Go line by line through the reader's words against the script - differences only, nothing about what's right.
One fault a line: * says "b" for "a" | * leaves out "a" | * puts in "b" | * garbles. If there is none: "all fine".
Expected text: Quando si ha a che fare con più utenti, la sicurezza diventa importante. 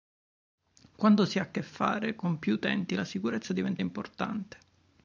all fine